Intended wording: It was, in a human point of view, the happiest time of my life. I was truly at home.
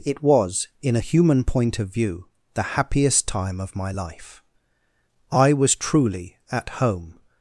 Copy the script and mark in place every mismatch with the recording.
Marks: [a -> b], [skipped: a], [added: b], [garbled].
It was, in a human point of view, the happiest time of my life. I was truly at home.